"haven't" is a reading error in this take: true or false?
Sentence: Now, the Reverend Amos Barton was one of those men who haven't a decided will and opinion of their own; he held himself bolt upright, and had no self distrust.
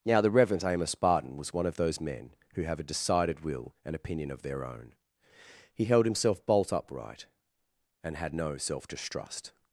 true